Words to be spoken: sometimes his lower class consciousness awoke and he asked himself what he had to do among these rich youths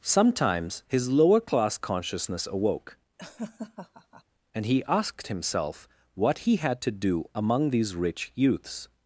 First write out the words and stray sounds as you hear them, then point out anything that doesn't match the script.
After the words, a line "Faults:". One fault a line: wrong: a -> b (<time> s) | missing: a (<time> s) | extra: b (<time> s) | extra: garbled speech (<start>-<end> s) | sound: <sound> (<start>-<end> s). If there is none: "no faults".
sometimes his lower class consciousness awoke and he asked himself what he had to do among these rich youths
Faults:
sound: laugh (3.2-4.2 s)